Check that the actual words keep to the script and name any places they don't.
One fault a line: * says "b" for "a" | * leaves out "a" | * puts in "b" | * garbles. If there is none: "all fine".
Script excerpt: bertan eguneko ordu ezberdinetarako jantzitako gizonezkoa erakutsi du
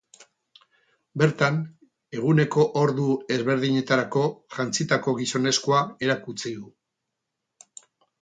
all fine